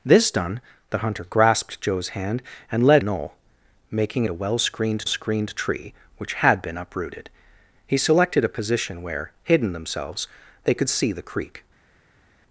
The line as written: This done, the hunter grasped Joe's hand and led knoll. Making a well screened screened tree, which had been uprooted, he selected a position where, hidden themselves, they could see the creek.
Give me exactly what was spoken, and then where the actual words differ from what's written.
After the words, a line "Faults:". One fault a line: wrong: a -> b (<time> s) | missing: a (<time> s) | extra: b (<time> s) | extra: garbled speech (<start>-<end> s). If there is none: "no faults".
This done, the hunter grasped Joe's hand and led knoll. Making a well screened screened tree, which had been uprooted, he selected a position where, hidden themselves, they could see the creek.
Faults:
no faults